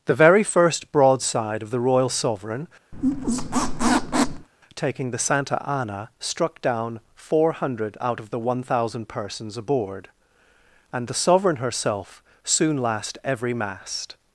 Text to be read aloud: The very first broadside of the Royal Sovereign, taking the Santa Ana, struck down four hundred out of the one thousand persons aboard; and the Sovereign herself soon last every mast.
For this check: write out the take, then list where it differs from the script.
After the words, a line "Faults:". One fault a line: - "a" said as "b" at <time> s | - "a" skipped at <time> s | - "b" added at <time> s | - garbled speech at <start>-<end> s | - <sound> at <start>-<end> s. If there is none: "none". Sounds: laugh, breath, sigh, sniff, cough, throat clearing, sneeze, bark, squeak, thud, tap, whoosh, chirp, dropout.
The very first broadside of the Royal Sovereign, taking the Santa Ana, struck down four hundred out of the one thousand persons aboard; and the Sovereign herself soon last every mast.
Faults:
- squeak at 2.9-4.5 s